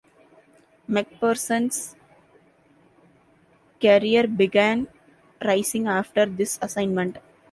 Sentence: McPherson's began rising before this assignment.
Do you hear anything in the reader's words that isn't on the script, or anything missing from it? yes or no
yes